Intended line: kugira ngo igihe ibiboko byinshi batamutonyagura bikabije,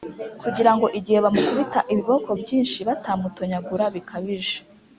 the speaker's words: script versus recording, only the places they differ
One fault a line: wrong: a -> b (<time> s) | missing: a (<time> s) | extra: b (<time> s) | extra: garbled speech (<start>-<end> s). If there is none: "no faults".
extra: bamukubita (1.2 s)